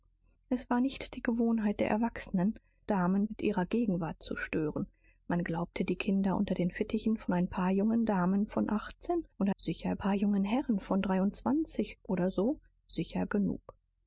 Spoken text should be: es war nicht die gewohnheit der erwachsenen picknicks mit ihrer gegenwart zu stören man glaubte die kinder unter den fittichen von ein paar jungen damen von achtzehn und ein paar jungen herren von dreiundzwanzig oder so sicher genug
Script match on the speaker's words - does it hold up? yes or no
no